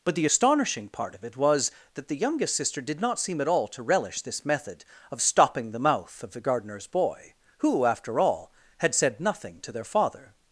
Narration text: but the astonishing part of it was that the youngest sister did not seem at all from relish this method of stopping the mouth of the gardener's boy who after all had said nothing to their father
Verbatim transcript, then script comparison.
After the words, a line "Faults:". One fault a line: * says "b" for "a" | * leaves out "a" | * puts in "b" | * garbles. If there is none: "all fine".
but the astonishing part of it was that the youngest sister did not seem at all to relish this method of stopping the mouth of the gardener's boy who after all had said nothing to their father
Faults:
* says "to" for "from"